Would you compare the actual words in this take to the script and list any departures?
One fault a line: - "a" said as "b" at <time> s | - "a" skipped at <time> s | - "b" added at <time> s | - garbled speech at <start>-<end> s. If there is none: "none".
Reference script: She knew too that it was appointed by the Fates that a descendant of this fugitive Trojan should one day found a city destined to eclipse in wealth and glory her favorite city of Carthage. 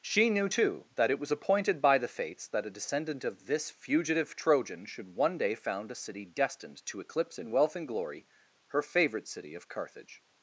none